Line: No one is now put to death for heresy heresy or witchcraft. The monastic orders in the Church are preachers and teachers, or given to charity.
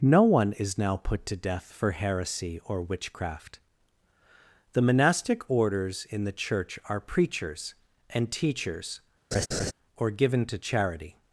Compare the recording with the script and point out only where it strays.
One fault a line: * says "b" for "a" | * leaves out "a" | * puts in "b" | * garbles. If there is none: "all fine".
* leaves out "heresy"